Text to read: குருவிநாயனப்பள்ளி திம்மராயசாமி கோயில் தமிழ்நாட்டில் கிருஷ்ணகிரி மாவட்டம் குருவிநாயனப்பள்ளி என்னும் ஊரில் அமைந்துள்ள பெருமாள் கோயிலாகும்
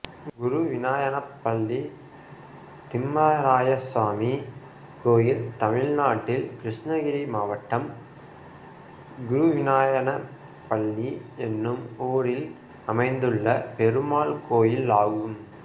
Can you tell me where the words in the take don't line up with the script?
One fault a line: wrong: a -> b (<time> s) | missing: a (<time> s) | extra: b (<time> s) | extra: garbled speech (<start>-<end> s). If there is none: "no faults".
no faults